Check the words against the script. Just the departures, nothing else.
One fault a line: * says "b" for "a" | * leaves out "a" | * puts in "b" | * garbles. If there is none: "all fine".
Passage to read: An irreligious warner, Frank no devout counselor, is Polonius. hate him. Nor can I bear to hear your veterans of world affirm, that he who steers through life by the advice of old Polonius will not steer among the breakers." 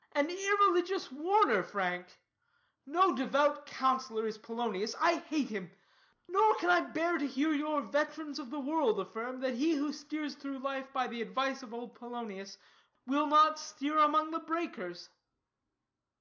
* puts in "I"
* puts in "the"